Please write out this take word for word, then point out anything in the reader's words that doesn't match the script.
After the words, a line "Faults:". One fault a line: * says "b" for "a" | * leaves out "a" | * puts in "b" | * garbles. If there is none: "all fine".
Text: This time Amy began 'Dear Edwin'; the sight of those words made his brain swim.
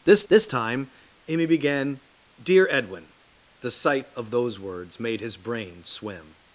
This this time Amy began 'Dear Edwin'; the sight of those words made his brain swim.
Faults:
* puts in "this"